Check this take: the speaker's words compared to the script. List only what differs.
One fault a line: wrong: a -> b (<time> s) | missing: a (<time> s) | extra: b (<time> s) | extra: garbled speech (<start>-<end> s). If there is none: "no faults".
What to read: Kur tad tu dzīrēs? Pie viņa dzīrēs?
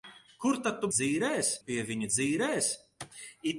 no faults